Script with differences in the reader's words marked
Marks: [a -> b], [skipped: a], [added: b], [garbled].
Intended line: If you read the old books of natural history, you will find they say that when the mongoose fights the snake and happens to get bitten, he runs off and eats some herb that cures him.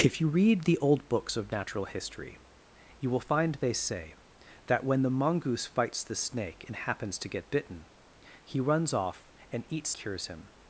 If you read the old books of natural history, you will find they say that when the mongoose fights the snake and happens to get bitten, he runs off and eats [skipped: some herb that] cures him.